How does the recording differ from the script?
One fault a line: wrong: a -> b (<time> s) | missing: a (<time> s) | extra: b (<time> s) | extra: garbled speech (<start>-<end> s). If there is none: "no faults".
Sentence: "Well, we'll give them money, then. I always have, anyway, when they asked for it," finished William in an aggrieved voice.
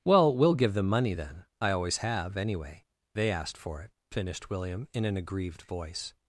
missing: when (2.9 s)